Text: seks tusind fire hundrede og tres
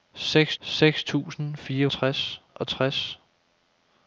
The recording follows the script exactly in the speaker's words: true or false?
false